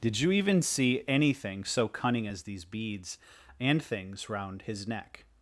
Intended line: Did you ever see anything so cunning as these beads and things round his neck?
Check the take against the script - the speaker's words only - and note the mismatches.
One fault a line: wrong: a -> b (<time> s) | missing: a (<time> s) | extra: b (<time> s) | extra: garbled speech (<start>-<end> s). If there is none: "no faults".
wrong: ever -> even (0.3 s)